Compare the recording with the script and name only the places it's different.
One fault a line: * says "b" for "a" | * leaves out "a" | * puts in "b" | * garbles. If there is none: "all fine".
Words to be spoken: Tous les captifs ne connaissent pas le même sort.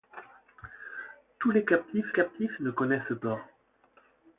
* puts in "captifs"
* leaves out "pas le même"